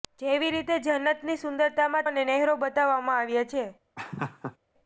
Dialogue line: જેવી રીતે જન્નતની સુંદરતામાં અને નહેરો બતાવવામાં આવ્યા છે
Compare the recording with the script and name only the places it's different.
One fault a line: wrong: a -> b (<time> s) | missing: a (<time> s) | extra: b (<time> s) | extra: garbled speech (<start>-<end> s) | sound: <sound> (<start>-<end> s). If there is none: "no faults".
sound: laugh (4.0-4.6 s)